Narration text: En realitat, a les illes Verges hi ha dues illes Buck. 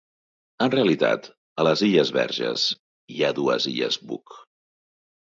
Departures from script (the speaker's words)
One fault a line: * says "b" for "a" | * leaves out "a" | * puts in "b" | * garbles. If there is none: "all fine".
all fine